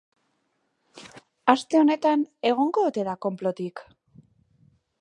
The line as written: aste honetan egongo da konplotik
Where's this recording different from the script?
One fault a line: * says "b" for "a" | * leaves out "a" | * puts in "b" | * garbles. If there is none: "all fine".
* puts in "ote"